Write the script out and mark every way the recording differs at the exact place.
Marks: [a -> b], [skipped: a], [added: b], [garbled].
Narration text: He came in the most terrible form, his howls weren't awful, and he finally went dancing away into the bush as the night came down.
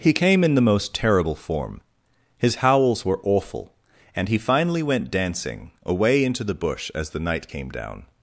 He came in the most terrible form, his howls [weren't -> were] awful, and he finally went dancing away into the bush as the night came down.